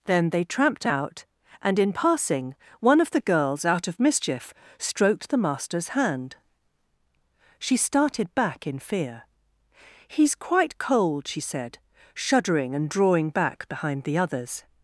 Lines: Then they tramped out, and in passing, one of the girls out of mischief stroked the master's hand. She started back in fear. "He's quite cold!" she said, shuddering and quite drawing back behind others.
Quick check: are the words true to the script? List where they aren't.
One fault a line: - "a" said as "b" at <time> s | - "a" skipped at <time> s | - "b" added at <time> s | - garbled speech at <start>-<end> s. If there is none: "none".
- "quite" skipped at 12.9 s
- "the" added at 14.0 s